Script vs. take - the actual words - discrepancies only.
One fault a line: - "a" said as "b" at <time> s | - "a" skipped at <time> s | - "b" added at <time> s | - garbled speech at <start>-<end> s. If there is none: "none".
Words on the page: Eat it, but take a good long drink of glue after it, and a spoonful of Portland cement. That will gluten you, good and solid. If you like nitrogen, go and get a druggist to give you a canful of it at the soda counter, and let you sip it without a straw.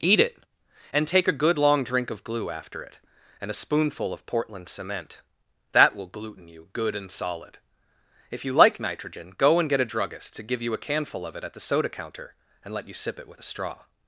- "but" said as "and" at 0.9 s
- "without" said as "with" at 13.3 s